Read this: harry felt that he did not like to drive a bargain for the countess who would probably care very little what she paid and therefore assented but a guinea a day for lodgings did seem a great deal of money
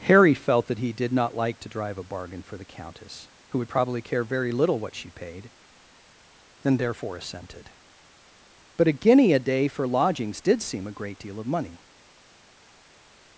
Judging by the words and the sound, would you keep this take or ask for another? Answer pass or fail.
pass